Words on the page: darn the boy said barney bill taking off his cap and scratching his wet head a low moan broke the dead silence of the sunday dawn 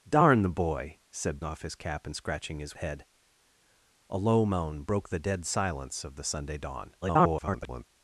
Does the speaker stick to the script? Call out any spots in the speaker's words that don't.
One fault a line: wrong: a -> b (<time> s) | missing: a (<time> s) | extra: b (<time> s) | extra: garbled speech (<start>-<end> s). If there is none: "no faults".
missing: barney bill taking (1.4 s)
missing: wet (2.8 s)
extra: garbled speech (7.0-7.9 s)